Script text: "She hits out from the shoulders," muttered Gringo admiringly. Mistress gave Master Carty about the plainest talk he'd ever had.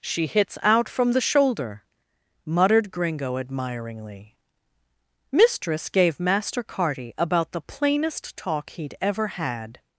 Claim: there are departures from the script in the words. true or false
true